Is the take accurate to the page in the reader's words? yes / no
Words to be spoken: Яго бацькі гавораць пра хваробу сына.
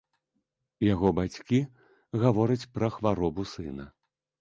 yes